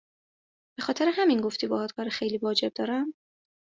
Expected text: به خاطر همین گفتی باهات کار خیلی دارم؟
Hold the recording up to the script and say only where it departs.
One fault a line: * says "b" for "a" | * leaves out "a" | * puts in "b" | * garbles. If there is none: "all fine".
* puts in "واجب"